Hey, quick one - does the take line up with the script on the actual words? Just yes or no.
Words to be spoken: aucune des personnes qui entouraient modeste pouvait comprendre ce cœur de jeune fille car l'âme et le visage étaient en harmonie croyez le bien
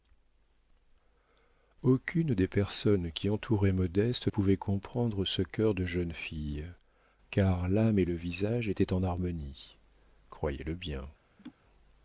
yes